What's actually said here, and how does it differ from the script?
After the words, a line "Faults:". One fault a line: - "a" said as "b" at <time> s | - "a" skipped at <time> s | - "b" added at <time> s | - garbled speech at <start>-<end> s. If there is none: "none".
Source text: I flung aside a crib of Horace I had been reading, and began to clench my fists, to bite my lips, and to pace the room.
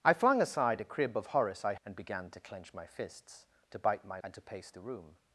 I flung aside a crib of Horace I and began to clench my fists, to bite my and to pace the room.
Faults:
- "had been reading" skipped at 1.8 s
- "lips" skipped at 4.2 s